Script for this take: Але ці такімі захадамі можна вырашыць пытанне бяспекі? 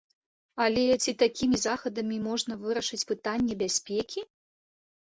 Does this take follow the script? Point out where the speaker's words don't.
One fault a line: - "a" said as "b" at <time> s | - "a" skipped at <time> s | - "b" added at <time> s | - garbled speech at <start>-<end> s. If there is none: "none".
none